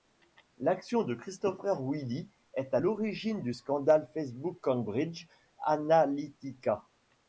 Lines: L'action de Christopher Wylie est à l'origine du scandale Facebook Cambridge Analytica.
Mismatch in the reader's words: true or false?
false